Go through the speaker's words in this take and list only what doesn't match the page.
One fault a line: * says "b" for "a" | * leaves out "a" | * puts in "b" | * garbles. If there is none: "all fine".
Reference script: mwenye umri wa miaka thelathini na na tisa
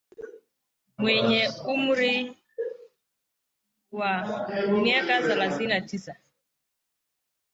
* leaves out "na"